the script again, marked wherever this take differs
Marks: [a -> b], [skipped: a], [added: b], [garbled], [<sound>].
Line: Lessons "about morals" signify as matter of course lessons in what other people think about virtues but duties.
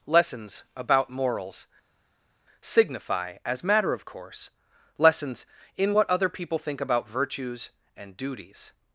Lessons "about morals" signify as matter of course lessons in what other people think about virtues [but -> and] duties.